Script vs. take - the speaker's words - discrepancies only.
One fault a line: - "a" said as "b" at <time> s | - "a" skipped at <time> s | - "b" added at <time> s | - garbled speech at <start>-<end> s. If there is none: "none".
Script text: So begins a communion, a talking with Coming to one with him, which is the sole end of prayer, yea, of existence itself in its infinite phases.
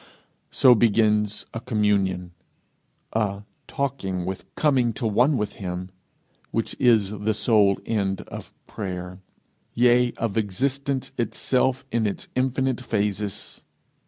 none